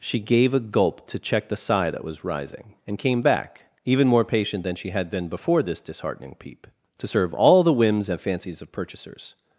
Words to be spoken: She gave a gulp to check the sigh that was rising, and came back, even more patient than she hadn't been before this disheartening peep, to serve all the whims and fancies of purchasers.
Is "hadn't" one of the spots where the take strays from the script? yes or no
yes